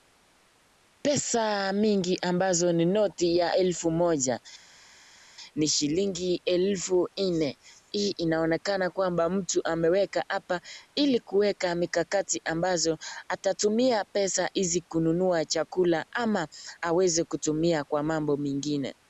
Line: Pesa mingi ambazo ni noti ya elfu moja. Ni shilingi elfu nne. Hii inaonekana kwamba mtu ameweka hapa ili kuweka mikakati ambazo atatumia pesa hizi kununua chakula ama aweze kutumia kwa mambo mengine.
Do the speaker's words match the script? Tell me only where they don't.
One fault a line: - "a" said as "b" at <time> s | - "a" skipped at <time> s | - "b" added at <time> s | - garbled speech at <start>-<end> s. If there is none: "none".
none